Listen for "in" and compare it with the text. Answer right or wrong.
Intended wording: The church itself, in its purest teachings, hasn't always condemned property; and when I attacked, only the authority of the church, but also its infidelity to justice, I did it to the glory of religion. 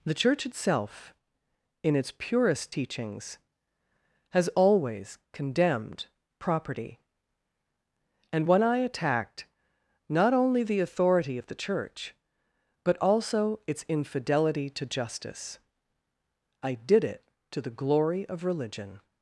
right